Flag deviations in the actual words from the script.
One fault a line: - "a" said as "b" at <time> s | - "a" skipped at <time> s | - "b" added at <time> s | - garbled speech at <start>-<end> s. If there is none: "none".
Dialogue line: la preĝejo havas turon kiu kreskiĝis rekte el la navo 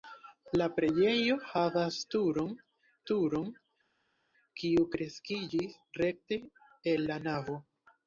- "turon" added at 3.1 s